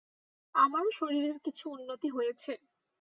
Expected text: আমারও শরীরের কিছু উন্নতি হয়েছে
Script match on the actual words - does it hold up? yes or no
yes